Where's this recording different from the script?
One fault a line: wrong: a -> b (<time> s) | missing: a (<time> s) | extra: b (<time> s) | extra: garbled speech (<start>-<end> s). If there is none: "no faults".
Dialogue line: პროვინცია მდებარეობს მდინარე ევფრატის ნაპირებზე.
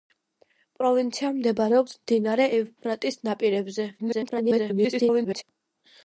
extra: garbled speech (4.0-5.4 s)